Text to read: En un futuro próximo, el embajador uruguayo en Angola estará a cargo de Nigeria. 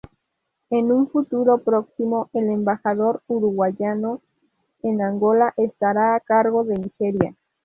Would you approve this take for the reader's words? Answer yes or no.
yes